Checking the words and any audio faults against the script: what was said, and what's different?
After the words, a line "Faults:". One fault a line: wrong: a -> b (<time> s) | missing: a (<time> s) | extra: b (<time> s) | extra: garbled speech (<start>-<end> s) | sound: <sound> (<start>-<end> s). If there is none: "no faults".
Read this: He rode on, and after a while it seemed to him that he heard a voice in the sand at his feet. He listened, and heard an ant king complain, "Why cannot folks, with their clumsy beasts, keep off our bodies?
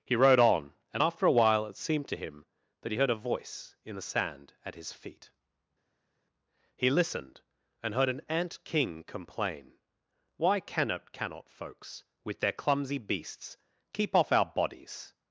He rode on, and after a while it seemed to him that he heard a voice in the sand at his feet. He listened, and heard an ant king complain, "Why cannot cannot folks, with their clumsy beasts, keep off our bodies?
Faults:
extra: cannot (11.1 s)